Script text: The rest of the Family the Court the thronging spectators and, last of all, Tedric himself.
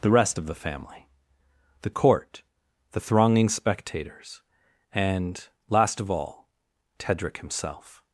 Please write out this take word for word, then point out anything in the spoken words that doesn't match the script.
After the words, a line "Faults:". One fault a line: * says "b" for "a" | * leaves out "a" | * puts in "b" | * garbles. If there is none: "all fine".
The rest of the Family the Court the thronging spectators and, last of all, Tedric himself.
Faults:
all fine